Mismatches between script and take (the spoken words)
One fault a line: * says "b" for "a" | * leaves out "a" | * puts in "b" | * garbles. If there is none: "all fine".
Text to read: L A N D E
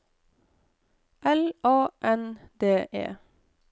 all fine